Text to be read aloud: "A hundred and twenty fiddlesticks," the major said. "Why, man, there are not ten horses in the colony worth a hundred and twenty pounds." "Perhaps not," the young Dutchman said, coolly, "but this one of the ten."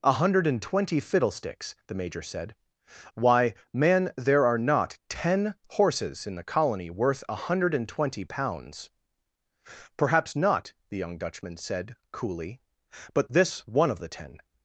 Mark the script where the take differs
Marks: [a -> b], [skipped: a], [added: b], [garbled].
"A hundred and twenty fiddlesticks," the major said. "Why, man, there are not ten horses in the colony worth a hundred and twenty pounds." "Perhaps not," the young Dutchman said, coolly, "but this one of the ten."